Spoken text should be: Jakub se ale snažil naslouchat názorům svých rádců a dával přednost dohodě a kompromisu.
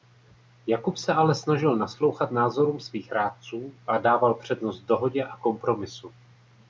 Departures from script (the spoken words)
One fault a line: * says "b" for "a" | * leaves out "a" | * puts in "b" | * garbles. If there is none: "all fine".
all fine